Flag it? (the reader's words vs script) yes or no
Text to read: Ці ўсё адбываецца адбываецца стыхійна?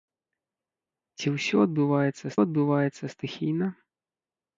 no